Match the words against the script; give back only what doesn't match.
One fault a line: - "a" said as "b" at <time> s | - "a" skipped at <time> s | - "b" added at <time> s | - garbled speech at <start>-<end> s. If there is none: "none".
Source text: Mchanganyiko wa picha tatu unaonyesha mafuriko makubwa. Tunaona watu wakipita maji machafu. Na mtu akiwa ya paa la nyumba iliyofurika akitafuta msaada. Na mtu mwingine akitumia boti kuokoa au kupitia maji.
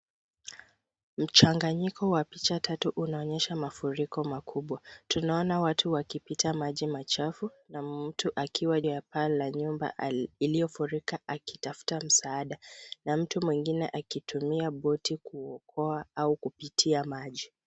none